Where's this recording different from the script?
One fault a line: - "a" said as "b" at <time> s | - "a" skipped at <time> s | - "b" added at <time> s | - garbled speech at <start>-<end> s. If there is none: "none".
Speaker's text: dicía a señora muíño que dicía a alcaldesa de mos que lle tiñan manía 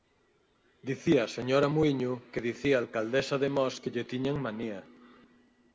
none